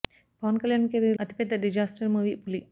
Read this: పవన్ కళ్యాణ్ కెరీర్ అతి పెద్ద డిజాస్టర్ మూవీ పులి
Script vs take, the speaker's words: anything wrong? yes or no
no